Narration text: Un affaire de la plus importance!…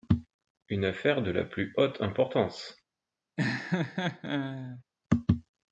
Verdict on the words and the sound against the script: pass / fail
fail